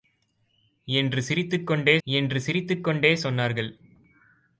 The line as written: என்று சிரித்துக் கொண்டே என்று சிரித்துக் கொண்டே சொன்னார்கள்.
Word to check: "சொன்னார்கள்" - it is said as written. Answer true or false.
true